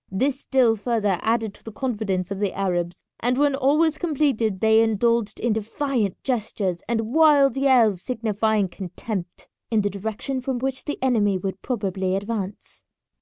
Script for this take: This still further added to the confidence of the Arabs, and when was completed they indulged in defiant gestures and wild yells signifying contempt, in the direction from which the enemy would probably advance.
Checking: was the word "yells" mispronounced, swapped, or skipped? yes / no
no